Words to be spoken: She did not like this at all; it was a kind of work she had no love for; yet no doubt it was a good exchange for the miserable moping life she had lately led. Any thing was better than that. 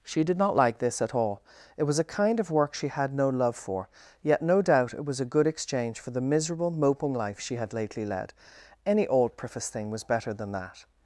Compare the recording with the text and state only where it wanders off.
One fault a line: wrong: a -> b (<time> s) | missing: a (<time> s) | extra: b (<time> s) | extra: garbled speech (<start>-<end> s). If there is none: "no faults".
extra: old preface (9.1 s)